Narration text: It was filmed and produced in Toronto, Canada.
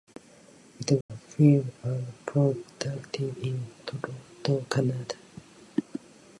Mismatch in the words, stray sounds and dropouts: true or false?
true